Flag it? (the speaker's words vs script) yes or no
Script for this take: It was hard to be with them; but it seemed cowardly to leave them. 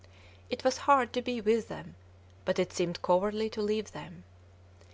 no